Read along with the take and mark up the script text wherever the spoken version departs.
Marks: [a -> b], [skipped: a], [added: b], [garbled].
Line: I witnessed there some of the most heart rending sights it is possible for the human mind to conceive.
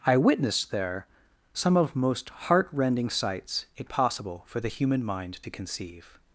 I witnessed there some of [skipped: the] most heart rending sights it [skipped: is] possible for the human mind to conceive.